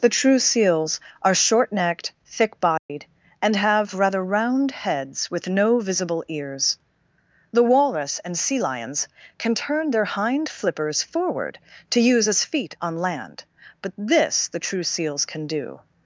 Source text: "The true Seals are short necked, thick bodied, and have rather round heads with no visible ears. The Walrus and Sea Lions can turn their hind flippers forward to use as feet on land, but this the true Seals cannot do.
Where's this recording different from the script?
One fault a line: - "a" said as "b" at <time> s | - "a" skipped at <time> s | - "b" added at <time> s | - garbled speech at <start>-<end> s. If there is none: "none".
- "cannot" said as "can" at 15.3 s